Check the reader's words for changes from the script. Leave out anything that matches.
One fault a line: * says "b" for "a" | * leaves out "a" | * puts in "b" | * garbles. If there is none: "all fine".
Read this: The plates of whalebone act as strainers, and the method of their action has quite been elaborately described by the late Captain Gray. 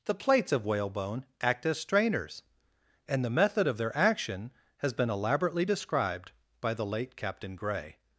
* leaves out "quite"